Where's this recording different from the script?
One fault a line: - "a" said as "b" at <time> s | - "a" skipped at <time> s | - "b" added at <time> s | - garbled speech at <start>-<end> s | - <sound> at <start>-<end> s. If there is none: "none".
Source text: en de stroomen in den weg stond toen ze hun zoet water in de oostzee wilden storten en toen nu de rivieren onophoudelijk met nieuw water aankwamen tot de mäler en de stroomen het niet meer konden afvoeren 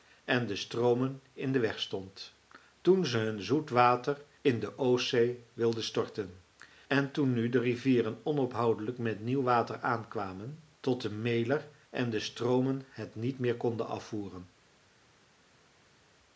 none